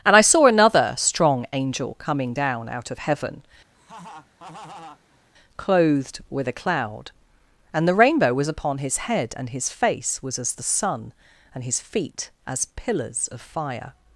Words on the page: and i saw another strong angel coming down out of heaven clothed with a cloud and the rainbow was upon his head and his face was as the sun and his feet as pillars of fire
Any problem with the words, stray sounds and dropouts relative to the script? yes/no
yes